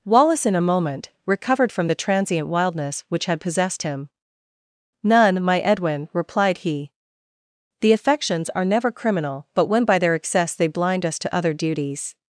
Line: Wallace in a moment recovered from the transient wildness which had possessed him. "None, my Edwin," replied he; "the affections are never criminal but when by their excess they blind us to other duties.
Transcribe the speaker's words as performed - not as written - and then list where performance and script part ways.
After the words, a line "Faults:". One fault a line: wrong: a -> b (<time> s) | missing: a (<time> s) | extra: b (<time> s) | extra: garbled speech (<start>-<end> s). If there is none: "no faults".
Wallace in a moment recovered from the transient wildness which had possessed him. "None, my Edwin," replied he; "the affections are never criminal but when by their excess they blind us to other duties.
Faults:
no faults